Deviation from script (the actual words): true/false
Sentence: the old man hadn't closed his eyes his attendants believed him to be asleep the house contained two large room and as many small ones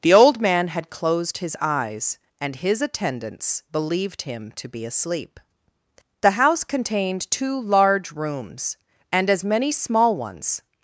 true